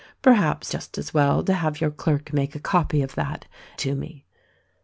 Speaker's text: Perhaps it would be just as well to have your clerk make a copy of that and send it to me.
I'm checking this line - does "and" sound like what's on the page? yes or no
no